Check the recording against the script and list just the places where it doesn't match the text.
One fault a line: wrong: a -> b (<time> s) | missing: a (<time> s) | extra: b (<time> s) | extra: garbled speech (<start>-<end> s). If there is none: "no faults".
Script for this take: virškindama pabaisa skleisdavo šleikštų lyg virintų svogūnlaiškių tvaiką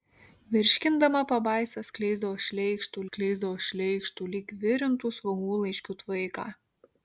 extra: skleisdavo šleikštų (3.1 s)